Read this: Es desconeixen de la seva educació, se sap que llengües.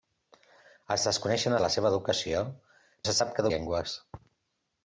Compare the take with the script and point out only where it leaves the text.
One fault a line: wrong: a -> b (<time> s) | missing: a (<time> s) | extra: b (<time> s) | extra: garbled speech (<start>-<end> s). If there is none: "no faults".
no faults